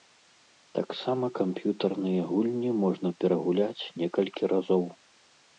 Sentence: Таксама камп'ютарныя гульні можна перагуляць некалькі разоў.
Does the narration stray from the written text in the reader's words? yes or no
no